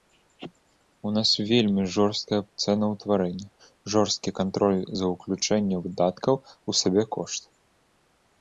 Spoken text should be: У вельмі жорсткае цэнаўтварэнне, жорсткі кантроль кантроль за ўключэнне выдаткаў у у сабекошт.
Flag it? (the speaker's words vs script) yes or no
yes